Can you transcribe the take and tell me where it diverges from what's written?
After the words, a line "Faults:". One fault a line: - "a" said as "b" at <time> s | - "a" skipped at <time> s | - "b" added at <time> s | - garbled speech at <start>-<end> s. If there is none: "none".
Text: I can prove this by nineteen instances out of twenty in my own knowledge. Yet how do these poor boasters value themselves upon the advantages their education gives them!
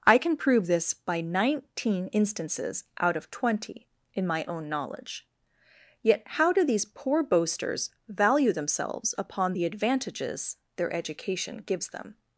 I can prove this by nineteen instances out of twenty in my own knowledge. Yet how do these poor boasters value themselves upon the advantages their education gives them!
Faults:
none